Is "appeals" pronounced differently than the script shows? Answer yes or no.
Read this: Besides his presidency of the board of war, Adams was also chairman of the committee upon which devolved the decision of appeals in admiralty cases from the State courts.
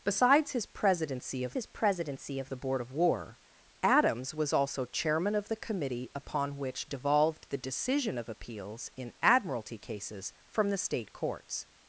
no